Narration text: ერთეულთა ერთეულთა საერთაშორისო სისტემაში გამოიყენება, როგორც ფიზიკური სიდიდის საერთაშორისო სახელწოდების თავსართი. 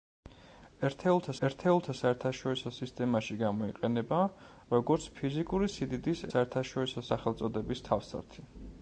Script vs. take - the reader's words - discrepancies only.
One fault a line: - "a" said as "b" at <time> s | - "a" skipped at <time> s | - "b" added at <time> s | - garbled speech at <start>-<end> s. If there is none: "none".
none